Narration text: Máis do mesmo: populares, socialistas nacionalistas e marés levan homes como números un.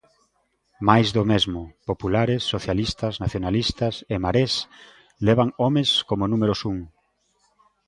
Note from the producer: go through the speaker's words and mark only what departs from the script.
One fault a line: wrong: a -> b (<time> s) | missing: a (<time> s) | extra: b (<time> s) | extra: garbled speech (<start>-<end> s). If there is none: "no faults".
no faults